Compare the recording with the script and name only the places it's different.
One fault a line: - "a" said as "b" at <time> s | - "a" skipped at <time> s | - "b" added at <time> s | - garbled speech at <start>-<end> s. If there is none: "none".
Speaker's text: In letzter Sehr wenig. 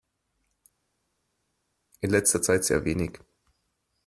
- "Zeit" added at 2.4 s